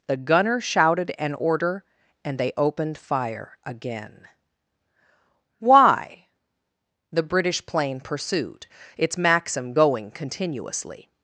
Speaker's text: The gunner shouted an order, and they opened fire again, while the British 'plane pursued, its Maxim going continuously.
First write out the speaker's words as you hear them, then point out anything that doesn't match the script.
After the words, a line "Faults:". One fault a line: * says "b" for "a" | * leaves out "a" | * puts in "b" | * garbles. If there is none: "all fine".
The gunner shouted an order, and they opened fire again, why the British 'plane pursued, its Maxim going continuously.
Faults:
* says "why" for "while"